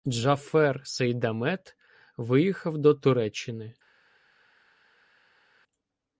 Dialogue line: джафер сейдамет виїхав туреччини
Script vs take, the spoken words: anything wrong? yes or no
yes